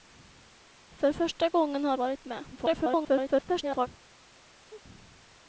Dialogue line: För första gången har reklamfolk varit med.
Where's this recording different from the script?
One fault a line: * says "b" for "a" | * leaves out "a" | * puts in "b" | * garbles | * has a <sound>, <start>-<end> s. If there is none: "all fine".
* leaves out "reklamfolk"
* garbles
* has a sneeze, 4.4-4.8 s